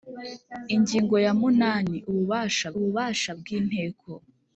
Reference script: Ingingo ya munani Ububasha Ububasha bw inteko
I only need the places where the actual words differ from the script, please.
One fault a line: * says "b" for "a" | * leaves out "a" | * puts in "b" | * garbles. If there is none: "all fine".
all fine